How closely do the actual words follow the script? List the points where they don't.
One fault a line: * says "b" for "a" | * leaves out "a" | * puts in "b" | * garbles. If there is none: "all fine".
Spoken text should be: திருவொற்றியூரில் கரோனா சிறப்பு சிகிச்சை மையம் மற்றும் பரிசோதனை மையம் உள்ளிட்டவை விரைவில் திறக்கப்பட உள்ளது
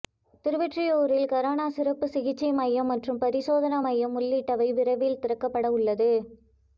all fine